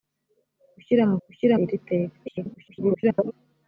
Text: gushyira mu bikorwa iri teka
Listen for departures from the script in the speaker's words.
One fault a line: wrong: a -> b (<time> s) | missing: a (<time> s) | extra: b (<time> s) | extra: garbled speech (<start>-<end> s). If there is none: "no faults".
wrong: bikorwa -> gushyira (1.2 s)
extra: garbled speech (2.3-3.3 s)